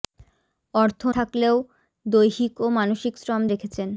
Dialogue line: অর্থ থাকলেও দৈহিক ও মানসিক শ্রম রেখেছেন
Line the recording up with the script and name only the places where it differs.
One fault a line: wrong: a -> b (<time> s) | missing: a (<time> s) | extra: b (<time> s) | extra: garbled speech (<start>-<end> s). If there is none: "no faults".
no faults